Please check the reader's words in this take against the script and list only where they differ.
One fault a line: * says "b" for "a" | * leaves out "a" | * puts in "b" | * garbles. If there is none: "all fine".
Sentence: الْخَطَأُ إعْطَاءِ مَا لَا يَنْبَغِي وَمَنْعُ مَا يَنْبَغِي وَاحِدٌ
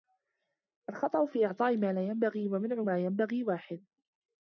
* puts in "فِي"